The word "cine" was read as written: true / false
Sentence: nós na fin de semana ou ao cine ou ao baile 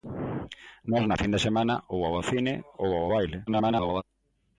true